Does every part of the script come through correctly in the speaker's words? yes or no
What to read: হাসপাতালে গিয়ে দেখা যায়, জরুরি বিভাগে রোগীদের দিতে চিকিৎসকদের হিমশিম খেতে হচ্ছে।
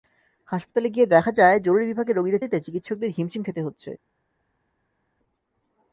yes